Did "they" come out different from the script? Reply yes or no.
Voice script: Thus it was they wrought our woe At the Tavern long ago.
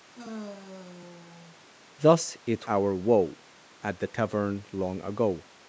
yes